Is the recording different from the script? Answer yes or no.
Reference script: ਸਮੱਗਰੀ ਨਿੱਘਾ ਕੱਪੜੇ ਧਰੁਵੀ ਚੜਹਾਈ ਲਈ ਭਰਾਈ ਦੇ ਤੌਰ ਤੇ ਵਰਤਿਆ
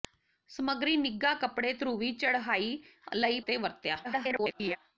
yes